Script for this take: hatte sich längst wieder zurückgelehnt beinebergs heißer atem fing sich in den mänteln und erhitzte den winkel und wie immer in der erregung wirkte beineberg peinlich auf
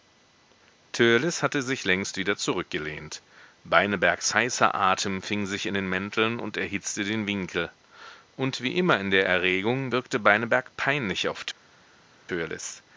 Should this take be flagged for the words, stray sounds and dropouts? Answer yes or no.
no